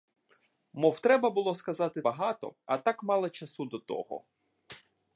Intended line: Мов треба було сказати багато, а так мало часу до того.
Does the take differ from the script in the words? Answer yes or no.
no